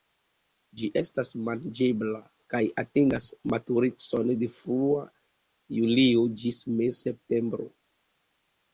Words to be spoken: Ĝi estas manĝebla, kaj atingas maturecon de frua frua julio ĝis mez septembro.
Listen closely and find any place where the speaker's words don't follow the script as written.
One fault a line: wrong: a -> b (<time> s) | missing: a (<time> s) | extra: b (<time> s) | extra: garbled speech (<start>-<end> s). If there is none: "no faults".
missing: frua (5.1 s)